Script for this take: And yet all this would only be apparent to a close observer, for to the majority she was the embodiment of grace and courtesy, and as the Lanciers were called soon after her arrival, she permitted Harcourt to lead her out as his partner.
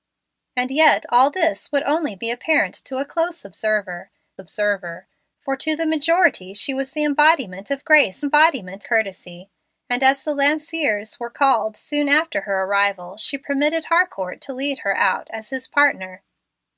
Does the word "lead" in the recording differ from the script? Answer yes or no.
no